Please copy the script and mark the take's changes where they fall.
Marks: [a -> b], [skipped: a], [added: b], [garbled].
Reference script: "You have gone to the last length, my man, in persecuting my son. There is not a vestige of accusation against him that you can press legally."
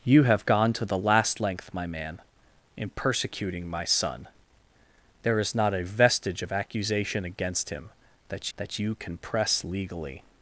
"You have gone to the last length, my man, in persecuting my son. There is not a vestige of accusation against him that [added: that] you can press legally."